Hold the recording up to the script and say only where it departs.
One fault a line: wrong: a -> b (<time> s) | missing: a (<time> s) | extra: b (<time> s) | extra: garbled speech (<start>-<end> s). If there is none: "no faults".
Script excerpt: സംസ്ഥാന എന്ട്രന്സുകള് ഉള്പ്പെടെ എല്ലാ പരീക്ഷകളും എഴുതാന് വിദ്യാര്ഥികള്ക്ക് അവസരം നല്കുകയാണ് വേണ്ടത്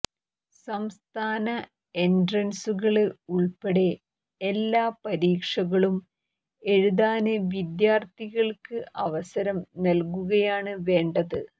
no faults